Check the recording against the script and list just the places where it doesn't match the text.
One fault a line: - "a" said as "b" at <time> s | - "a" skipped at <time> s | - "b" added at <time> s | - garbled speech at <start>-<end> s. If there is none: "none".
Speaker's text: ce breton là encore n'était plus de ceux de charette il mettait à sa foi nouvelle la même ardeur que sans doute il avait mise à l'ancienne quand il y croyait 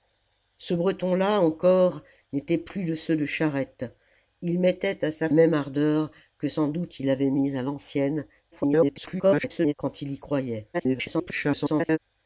- "foi nouvelle la" skipped at 5.3 s
- garbled speech at 8.5-9.7 s
- garbled speech at 10.7-12.0 s